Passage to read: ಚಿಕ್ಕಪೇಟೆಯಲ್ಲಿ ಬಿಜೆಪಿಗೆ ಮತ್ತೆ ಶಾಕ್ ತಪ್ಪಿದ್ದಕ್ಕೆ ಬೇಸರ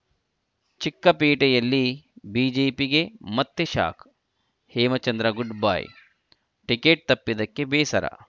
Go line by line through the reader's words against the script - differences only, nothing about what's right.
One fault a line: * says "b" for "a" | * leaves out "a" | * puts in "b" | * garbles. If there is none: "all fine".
* puts in "ಹೇಮಚಂದ್ರ ಗುಡ್‌ಬೈ ಟಿಕೆಟ್"